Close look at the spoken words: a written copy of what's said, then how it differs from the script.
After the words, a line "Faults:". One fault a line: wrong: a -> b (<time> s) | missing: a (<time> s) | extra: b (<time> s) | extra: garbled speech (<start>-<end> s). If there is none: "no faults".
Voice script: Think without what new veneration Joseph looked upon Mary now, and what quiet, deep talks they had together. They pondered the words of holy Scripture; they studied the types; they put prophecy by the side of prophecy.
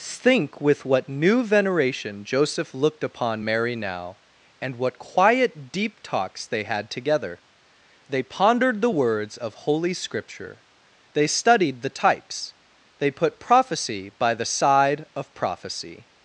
Think with what new veneration Joseph looked upon Mary now, and what quiet, deep talks they had together. They pondered the words of holy Scripture; they studied the types; they put prophecy by the side of prophecy.
Faults:
wrong: without -> with (0.6 s)